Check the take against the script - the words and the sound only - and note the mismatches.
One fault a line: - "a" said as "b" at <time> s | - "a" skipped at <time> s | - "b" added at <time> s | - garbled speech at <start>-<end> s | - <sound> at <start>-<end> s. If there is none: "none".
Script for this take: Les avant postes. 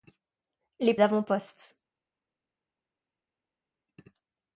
none